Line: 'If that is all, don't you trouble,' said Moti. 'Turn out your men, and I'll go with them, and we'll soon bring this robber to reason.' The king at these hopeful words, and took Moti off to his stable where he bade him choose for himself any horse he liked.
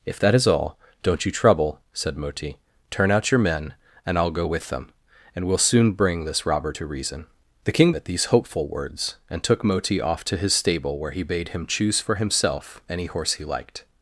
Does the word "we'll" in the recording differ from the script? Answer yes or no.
no